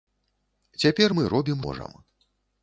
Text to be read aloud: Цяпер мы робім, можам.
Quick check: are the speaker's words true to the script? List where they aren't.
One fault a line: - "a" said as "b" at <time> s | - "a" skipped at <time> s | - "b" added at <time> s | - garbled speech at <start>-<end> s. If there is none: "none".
none